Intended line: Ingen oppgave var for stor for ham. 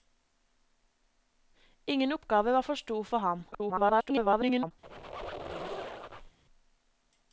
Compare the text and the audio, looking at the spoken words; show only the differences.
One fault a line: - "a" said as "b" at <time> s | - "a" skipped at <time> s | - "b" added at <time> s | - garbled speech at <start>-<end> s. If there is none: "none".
- garbled speech at 3.5-4.7 s